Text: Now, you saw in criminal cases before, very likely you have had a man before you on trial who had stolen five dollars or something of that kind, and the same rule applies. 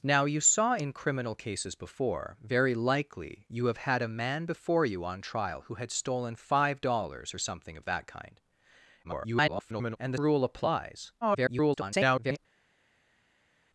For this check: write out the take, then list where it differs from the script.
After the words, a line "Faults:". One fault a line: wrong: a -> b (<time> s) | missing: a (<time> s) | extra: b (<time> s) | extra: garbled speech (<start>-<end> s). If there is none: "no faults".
Now, you saw in criminal cases before, very likely you have had a man before you on trial who had stolen five dollars or something of that kind, [garbled] and the rule applies. [garbled]
Faults:
extra: garbled speech (9.0-10.0 s)
missing: same (10.2 s)
extra: garbled speech (11.2-12.4 s)